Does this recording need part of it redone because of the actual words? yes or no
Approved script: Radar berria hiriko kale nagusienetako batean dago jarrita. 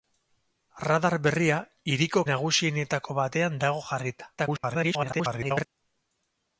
yes